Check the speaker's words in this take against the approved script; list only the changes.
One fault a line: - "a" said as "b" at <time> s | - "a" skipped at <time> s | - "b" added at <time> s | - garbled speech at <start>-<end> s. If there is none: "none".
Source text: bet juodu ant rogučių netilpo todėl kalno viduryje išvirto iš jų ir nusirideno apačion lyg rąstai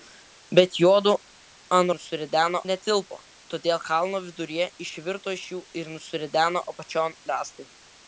- "rogučių" said as "nusirideno" at 1.9 s
- "lyg" skipped at 7.2 s